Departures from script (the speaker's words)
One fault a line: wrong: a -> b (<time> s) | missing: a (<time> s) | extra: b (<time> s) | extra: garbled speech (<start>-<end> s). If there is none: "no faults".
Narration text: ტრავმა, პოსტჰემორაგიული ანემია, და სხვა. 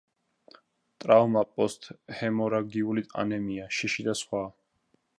extra: შიში (3.8 s)